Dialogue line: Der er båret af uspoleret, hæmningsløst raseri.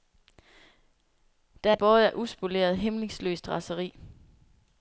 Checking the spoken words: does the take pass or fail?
pass